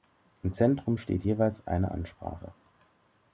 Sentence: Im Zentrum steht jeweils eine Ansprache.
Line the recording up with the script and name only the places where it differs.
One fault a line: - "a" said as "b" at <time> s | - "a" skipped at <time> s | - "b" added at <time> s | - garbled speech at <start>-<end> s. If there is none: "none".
none